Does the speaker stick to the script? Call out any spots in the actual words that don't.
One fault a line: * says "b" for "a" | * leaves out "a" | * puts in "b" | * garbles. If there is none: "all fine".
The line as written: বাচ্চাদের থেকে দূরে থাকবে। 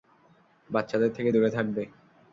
all fine